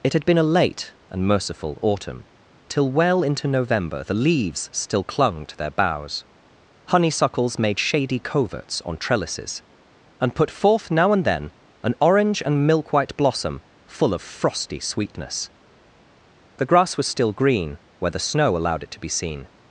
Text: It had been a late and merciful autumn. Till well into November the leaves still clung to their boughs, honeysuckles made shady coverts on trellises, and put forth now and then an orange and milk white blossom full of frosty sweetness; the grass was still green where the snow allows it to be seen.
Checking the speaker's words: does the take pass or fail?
fail